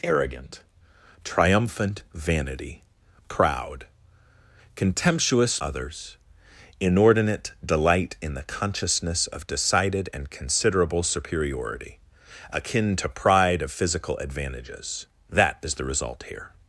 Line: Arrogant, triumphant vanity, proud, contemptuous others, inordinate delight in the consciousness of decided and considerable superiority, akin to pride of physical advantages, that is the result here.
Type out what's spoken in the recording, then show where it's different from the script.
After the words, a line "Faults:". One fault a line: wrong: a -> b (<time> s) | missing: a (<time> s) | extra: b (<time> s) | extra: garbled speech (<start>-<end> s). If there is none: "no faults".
Arrogant, triumphant vanity, proud, contemptuous others, inordinate delight in the consciousness of decided and considerable superiority, akin to pride of physical advantages, that is the result here.
Faults:
no faults